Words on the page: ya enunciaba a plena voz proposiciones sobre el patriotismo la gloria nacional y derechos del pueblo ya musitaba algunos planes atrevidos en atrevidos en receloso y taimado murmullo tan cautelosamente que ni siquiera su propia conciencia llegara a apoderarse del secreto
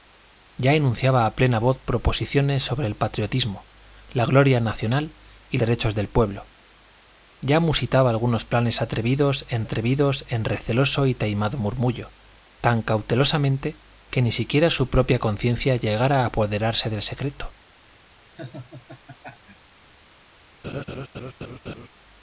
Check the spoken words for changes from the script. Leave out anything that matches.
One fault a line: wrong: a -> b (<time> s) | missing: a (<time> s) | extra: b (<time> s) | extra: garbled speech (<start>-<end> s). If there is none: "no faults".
no faults